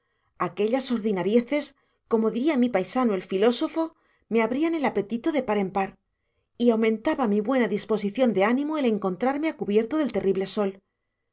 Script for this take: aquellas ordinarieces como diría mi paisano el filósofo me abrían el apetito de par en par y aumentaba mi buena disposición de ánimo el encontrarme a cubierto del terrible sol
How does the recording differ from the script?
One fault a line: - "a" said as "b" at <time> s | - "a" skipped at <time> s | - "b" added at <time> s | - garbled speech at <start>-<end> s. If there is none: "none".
none